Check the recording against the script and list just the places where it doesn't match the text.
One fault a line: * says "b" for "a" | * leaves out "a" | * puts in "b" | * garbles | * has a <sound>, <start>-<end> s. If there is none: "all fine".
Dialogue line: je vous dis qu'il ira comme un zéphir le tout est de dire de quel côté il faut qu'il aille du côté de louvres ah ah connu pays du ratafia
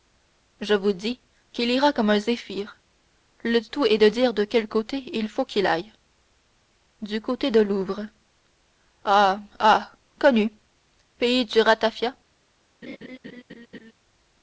* has a laugh, 12.8-13.9 s